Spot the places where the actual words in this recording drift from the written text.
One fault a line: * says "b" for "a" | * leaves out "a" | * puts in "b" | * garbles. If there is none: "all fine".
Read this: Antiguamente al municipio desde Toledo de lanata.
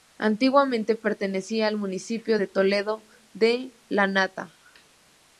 * puts in "pertenecía"
* says "de" for "desde"